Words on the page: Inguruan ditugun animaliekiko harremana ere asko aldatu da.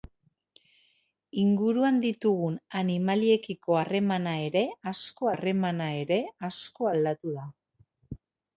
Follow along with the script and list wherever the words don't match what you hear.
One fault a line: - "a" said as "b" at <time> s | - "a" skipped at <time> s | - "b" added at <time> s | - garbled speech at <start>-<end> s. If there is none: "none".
- "harremana ere asko" added at 5.3 s